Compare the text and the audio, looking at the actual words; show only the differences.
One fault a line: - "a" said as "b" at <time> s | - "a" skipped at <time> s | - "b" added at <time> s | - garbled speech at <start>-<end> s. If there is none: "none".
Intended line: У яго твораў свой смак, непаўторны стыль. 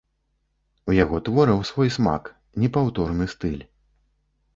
none